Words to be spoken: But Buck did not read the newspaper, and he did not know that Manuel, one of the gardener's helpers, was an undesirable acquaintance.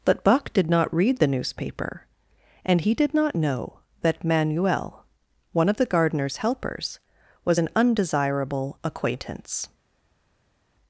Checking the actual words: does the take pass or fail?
pass